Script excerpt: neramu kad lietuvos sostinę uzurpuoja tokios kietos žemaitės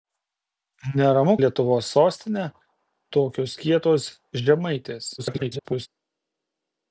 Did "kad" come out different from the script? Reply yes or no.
yes